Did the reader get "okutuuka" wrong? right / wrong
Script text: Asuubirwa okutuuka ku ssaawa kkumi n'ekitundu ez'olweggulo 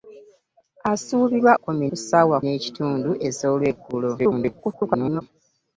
wrong